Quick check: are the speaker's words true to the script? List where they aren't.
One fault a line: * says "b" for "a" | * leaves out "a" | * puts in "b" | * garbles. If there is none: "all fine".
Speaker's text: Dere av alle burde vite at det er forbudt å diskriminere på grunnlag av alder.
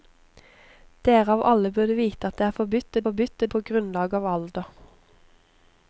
* says "forbudt" for "diskriminere"